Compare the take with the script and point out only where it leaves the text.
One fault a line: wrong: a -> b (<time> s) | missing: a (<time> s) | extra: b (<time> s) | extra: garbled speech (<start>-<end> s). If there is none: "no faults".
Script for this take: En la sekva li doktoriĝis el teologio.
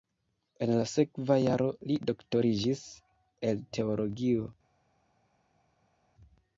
extra: jaro (1.4 s)